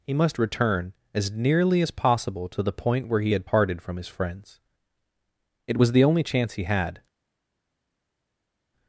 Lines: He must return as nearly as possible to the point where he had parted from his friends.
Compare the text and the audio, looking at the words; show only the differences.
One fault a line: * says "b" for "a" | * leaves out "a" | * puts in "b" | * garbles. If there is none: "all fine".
* puts in "It was the only chance he had"